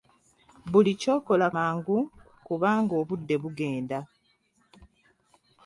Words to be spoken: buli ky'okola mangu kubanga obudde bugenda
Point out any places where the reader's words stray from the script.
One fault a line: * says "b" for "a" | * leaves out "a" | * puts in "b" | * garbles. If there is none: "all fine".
all fine